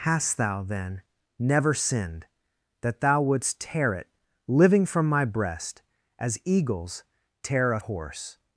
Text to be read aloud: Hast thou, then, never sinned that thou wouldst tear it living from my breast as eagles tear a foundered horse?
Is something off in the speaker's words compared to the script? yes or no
yes